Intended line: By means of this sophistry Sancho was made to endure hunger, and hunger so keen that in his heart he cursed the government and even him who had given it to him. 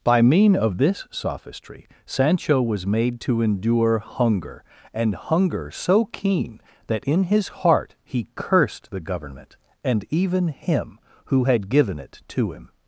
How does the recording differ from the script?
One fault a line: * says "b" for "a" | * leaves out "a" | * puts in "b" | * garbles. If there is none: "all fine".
* says "mean" for "means"